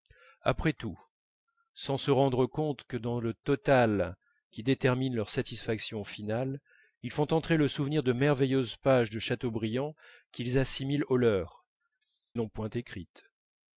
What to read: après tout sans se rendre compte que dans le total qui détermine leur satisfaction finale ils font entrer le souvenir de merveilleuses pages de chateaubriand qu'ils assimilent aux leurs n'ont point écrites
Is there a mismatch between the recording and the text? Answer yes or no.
no